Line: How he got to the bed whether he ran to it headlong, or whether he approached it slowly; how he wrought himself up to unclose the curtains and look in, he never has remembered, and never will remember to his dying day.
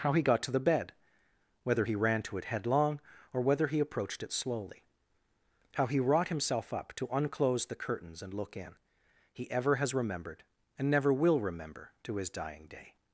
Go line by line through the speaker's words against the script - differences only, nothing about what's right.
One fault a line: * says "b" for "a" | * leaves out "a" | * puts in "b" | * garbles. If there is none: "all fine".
* says "ever" for "never"